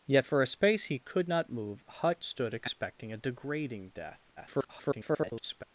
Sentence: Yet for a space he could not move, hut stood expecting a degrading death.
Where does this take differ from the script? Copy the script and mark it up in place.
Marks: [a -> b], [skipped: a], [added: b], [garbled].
Yet for a space he could not move, hut stood expecting a degrading death. [garbled]